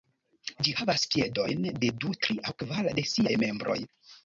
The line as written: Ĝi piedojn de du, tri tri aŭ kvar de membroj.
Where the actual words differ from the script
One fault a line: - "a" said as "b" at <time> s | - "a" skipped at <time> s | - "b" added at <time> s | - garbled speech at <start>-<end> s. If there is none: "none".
- "havas" added at 0.8 s
- "tri" skipped at 2.4 s
- "siaj" added at 3.1 s